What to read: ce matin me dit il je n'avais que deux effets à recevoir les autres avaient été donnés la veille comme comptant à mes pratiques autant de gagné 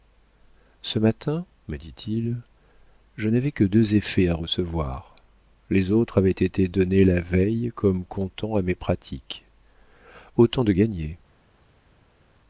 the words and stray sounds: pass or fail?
pass